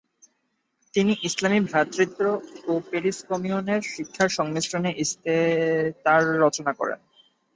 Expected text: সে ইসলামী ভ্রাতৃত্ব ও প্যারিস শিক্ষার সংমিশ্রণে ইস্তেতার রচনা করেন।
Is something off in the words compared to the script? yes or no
yes